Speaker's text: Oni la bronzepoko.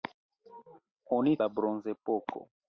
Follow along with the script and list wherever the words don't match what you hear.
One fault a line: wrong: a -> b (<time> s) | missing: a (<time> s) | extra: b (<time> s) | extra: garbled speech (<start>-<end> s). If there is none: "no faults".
no faults